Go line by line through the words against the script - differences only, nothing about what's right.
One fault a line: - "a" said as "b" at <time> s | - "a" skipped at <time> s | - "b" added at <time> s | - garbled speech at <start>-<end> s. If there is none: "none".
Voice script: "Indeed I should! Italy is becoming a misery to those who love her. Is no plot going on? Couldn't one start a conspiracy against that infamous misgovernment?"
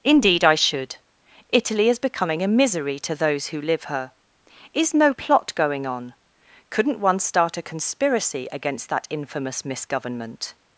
- "love" said as "live" at 3.6 s